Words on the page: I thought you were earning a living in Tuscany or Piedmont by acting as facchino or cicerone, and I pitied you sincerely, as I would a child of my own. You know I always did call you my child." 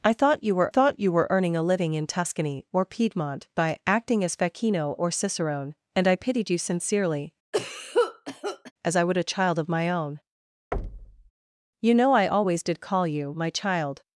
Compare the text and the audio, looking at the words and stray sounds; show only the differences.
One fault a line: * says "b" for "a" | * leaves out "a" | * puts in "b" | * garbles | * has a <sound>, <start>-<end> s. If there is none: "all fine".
* puts in "thought you were"
* has a cough, 7.5-8.7 s
* has a thud, 10.7-11.3 s